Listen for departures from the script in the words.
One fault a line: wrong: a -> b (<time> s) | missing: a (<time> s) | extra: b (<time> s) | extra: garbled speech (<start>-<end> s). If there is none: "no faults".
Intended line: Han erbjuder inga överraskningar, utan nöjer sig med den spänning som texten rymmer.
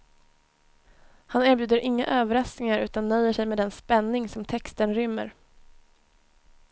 no faults